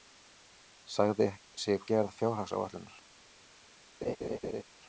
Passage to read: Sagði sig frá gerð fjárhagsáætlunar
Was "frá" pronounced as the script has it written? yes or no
no